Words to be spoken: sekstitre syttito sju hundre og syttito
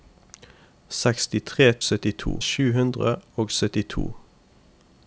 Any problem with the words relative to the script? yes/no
no